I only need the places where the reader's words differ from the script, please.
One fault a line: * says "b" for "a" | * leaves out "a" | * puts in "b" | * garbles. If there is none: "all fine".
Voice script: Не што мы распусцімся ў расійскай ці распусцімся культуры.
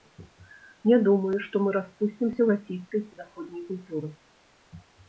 * puts in "думаю"
* says "заходняй" for "распусцімся"